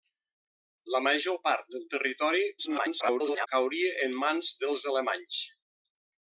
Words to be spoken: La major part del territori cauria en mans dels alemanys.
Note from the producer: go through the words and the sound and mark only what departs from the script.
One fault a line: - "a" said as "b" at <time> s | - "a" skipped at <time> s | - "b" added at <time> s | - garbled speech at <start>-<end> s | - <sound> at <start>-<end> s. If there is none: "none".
- garbled speech at 2.6-3.5 s